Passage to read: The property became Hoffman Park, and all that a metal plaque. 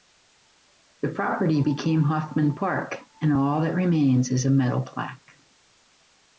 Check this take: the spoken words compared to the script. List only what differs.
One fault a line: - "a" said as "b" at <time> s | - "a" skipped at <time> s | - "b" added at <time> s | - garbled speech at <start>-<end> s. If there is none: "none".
- "remains is" added at 3.7 s